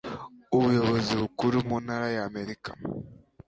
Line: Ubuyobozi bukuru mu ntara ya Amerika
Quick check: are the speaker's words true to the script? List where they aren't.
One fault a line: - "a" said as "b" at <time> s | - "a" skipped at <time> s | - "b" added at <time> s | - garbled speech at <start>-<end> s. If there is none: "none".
none